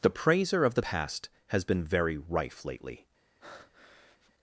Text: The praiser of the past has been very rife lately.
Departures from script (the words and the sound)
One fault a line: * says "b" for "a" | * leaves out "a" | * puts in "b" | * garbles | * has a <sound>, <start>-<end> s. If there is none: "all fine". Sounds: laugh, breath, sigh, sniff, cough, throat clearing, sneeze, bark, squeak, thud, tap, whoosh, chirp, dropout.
* has a breath, 3.4-4.3 s